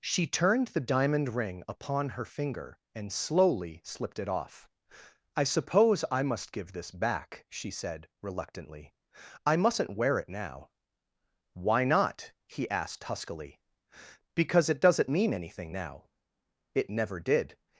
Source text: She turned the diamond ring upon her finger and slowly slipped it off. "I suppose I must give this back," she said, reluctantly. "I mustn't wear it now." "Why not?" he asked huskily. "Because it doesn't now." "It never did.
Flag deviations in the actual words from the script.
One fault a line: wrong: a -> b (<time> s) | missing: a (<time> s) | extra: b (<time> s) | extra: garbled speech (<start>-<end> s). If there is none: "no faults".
extra: mean anything (15.1 s)